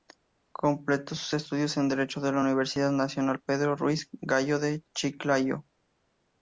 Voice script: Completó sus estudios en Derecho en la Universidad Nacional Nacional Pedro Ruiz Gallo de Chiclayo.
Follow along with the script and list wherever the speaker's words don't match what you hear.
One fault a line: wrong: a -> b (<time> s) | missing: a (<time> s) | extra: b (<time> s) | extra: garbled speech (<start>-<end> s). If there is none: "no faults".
missing: Nacional (3.4 s)